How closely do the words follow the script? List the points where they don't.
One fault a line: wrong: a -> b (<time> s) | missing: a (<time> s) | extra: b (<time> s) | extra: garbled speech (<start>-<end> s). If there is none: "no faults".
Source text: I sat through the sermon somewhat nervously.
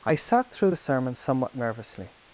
no faults